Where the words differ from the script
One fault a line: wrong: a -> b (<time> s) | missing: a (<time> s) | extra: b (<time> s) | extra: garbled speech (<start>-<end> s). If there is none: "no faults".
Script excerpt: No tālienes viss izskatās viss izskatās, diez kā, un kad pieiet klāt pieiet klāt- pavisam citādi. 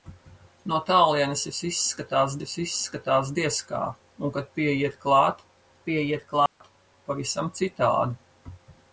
no faults